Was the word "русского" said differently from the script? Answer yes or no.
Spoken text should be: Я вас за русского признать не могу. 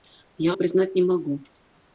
yes